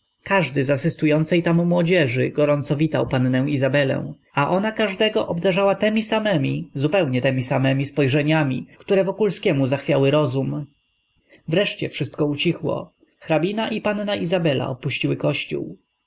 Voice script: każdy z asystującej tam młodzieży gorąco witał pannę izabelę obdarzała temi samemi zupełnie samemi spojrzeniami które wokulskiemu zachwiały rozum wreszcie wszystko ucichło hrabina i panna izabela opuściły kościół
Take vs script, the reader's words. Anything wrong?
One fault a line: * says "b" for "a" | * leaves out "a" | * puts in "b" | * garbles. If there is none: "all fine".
* puts in "a ona każdego"
* puts in "temi"